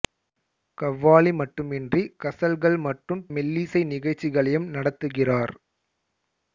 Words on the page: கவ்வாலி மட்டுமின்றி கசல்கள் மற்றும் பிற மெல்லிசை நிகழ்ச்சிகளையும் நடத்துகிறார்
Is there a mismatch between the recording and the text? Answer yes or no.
yes